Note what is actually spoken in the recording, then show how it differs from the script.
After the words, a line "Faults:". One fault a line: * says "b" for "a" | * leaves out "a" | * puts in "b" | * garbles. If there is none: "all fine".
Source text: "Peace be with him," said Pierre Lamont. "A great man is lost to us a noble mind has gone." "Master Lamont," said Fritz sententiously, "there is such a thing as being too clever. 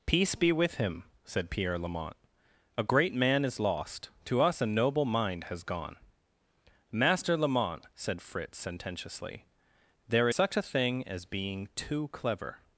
"Peace be with him," said Pierre Lamont. "A great man is lost to us a noble mind has gone." "Master Lamont," said Fritz sententiously, "there such a thing as being too clever.
Faults:
* leaves out "is"